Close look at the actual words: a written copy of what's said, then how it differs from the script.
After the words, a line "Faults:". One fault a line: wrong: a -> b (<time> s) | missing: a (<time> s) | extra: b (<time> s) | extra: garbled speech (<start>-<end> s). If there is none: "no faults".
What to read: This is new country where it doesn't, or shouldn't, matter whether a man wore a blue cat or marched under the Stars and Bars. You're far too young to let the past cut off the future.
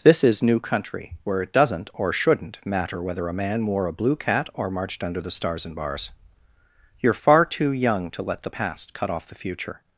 This is new country where it doesn't, or shouldn't, matter whether a man wore a blue cat or marched under the Stars and Bars. You're far too young to let the past cut off the future.
Faults:
no faults